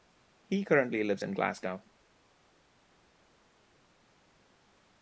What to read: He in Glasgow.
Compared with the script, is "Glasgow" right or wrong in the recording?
right